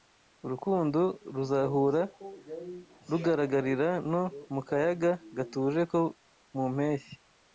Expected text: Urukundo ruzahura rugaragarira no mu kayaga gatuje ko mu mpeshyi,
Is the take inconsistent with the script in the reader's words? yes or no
no